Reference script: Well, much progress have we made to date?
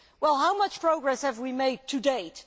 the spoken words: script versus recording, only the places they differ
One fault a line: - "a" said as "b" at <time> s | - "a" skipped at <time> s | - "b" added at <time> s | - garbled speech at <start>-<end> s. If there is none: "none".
- "how" added at 0.4 s